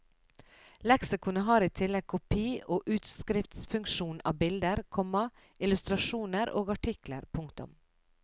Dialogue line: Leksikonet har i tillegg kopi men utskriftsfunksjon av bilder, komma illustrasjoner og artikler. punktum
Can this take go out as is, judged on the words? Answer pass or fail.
fail